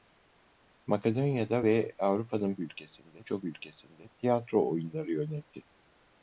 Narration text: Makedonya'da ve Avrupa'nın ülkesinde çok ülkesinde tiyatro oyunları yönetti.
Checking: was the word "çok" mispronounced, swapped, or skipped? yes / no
no